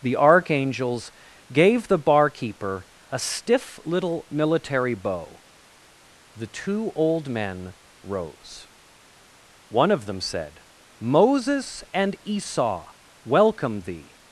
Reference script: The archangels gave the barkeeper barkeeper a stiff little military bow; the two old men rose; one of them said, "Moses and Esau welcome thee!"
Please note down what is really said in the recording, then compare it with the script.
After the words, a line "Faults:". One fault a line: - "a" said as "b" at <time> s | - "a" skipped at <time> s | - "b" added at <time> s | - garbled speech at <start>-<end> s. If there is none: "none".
The archangels gave the barkeeper a stiff little military bow; the two old men rose; one of them said, "Moses and Esau welcome thee!"
Faults:
- "barkeeper" skipped at 2.9 s